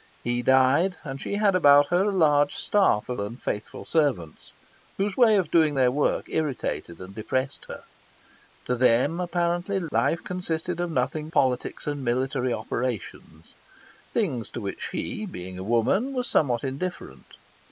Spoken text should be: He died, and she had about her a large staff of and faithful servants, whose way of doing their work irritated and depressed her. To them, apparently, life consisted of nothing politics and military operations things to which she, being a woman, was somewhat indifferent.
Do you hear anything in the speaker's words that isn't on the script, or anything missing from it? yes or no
no